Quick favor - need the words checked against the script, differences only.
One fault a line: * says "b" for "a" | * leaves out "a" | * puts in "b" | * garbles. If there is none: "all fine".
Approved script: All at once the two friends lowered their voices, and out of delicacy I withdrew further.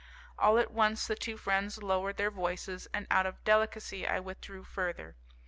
all fine